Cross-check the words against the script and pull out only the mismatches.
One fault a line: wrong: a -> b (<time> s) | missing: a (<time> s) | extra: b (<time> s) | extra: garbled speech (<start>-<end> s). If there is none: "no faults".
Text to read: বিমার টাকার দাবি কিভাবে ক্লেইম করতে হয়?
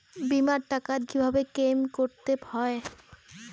missing: দাবি (1.0 s)